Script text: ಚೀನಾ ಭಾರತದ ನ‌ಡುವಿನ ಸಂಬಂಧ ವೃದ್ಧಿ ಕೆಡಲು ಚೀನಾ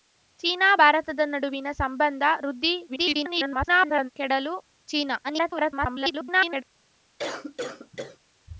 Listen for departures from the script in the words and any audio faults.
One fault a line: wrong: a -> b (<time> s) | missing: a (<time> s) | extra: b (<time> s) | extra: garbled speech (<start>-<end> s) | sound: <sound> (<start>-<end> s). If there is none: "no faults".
extra: garbled speech (2.9-4.1 s)
extra: garbled speech (5.2-6.6 s)
sound: cough (7.2-8.2 s)